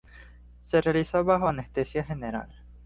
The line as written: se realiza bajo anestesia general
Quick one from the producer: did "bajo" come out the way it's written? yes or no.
yes